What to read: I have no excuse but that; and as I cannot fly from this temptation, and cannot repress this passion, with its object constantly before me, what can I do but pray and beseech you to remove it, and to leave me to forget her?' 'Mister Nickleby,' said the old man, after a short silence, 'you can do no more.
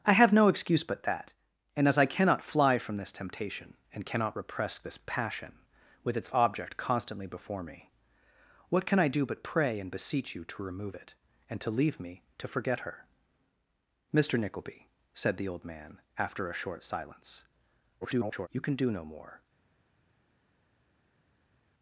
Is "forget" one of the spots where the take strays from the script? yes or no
no